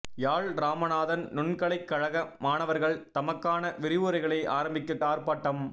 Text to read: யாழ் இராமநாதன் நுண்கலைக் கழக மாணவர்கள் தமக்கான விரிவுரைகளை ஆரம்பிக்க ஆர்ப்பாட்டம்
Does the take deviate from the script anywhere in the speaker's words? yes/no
no